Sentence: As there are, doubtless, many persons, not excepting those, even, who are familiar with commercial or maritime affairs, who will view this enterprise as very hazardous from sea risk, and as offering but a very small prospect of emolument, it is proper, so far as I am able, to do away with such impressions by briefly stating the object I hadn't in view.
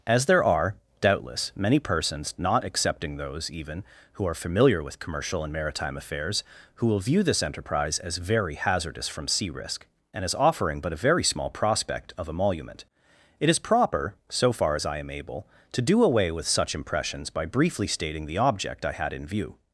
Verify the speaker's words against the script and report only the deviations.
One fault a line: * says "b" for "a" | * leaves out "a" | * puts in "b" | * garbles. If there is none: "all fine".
* says "and" for "or"
* says "had" for "hadn't"